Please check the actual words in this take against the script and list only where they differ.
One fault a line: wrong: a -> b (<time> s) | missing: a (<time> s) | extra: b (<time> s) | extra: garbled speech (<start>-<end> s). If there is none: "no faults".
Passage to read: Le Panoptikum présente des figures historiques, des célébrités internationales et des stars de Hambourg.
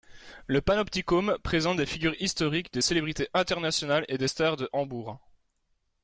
no faults